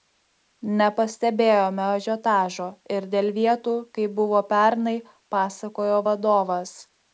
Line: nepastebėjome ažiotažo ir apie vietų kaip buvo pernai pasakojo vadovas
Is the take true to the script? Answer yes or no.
no